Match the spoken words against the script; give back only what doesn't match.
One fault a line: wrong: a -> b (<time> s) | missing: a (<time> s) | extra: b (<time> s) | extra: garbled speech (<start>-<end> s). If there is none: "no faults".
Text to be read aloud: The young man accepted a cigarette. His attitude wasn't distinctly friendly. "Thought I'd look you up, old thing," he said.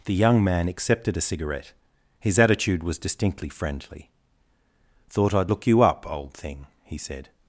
wrong: wasn't -> was (2.8 s)